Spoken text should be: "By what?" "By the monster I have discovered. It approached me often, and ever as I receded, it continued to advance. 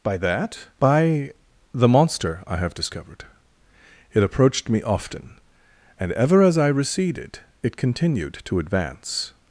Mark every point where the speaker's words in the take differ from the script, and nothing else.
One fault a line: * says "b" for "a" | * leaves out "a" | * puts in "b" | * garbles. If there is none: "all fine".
* says "that" for "what"